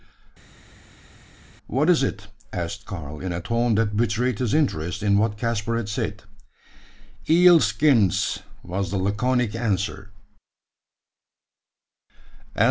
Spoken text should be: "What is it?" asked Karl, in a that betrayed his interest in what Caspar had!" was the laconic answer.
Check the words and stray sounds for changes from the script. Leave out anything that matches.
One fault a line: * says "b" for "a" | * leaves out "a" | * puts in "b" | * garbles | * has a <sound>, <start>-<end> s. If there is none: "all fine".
* puts in "tone"
* puts in "said Eel skins"